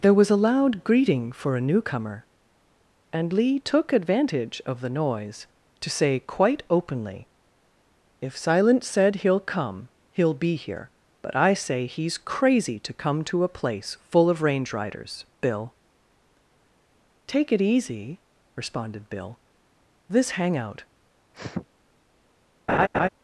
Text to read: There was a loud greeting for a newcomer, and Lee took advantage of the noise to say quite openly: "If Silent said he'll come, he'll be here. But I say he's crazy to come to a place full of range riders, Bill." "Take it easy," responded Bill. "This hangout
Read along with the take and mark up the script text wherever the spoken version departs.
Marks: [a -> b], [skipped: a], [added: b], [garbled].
There was a loud greeting for a newcomer, and Lee took advantage of the noise to say quite openly: "If Silent said he'll come, he'll be here. But I say he's crazy to come to a place full of range riders, Bill." "Take it easy," responded Bill. "This hangout